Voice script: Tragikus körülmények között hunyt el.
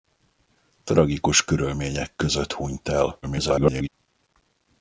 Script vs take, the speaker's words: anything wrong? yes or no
yes